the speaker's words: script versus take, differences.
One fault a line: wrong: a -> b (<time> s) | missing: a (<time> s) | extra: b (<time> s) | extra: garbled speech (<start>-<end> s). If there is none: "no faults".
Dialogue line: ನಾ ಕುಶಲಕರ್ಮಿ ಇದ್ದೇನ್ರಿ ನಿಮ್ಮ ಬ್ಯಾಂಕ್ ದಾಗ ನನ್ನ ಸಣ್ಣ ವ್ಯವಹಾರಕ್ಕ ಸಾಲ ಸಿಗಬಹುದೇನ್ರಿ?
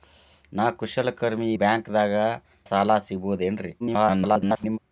missing: ಇದ್ದೇನ್ರಿ ನಿಮ್ಮ (1.5 s)
missing: ನನ್ನ ಸಣ್ಣ ವ್ಯವಹಾರಕ್ಕ (2.1 s)
extra: garbled speech (3.8-4.8 s)